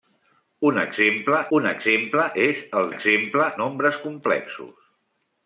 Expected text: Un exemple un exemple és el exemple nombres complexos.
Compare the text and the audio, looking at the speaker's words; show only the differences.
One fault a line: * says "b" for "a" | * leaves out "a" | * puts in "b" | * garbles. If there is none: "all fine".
all fine